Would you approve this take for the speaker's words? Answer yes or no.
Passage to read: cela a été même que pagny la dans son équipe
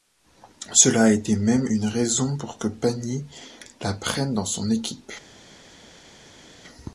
no